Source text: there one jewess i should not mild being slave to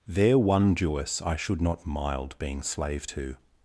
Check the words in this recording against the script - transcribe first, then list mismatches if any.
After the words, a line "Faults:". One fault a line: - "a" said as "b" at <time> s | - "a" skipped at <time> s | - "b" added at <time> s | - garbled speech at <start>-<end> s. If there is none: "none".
there one jewess i should not mild being slave to
Faults:
none